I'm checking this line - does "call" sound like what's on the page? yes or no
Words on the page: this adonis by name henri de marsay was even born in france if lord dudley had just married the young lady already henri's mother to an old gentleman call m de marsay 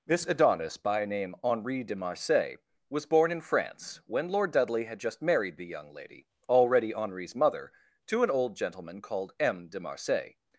no